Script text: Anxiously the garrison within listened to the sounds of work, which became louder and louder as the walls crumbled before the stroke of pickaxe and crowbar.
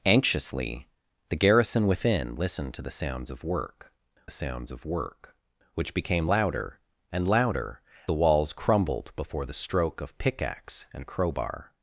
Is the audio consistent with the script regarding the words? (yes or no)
no